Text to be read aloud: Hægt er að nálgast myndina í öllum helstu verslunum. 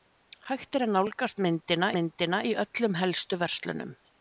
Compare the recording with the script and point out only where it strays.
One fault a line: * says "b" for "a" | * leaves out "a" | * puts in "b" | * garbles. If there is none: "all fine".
* puts in "myndina"